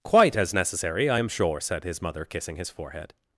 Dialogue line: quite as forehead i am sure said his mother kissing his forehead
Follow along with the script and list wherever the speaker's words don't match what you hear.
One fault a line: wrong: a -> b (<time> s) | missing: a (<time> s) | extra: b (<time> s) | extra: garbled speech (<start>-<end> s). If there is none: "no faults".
wrong: forehead -> necessary (0.5 s)